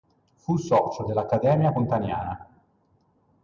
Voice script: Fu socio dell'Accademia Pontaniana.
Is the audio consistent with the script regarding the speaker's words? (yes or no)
yes